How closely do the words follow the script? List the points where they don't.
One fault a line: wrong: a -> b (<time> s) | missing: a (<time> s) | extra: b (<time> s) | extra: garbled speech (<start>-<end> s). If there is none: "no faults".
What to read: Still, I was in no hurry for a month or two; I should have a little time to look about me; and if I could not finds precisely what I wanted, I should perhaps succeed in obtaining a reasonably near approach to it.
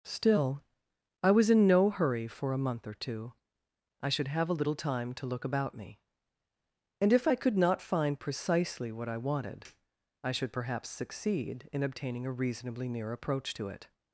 wrong: finds -> find (7.8 s)